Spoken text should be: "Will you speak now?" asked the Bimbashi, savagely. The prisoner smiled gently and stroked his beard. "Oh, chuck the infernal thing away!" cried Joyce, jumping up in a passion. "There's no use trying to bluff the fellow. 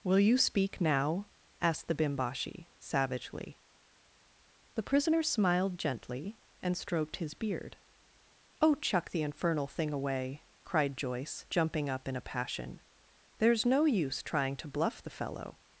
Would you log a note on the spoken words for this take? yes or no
no